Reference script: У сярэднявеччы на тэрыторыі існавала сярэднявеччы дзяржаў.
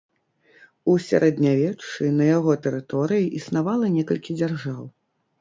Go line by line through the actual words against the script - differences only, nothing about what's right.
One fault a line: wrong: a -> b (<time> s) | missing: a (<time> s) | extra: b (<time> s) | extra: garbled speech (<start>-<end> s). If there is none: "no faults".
extra: яго (2.4 s)
wrong: сярэднявеччы -> некалькі (4.0 s)